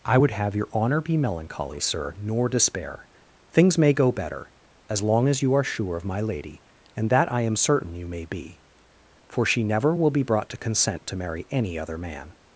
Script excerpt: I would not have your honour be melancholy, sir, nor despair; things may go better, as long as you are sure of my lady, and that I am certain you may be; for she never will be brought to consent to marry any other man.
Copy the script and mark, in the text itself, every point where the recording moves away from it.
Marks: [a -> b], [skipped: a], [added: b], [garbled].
I would [skipped: not] have your honour be melancholy, sir, nor despair; things may go better, as long as you are sure of my lady, and that I am certain you may be; for she never will be brought to consent to marry any other man.